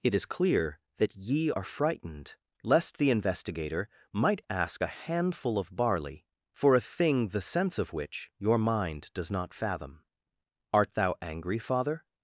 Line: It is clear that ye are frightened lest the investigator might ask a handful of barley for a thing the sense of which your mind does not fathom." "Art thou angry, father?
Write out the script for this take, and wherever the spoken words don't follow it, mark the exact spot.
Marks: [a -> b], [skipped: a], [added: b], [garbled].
It is clear that ye are frightened lest the investigator might ask a handful of barley for a thing the sense of which your mind does not fathom." "Art thou angry, father?